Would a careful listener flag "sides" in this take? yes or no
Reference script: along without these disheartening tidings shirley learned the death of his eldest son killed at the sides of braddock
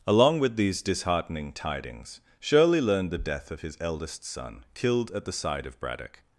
yes